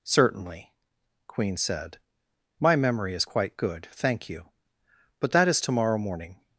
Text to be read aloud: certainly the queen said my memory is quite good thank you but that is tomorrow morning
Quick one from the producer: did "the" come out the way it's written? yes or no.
no